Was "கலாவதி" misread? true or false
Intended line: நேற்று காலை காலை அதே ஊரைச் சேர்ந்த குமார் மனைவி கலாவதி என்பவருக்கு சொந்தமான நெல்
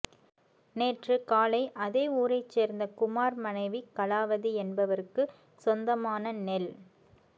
false